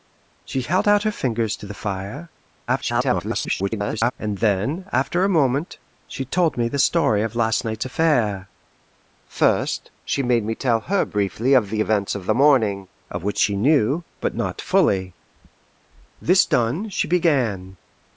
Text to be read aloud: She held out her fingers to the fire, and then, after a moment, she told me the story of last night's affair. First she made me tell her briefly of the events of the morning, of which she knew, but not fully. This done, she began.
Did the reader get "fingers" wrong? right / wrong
right